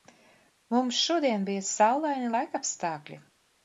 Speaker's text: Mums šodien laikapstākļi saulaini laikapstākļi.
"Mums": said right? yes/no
yes